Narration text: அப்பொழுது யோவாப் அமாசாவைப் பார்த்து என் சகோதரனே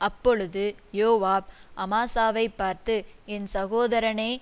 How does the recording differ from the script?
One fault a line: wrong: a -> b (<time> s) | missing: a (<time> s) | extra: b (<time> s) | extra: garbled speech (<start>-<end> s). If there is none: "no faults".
no faults